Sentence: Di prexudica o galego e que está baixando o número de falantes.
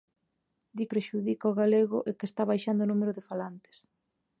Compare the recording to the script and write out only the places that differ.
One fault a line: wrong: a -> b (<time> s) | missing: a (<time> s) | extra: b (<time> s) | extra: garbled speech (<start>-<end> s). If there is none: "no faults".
no faults